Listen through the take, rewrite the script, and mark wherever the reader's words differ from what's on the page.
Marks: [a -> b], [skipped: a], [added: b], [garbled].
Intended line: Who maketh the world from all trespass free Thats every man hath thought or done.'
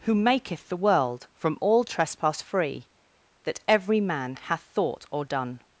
Who maketh the world from all trespass free [Thats -> That] every man hath thought or done.'